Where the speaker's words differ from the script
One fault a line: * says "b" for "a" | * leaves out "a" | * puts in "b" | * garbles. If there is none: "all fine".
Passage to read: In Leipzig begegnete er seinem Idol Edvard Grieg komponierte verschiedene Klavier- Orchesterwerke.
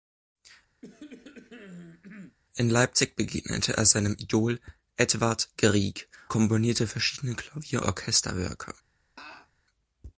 all fine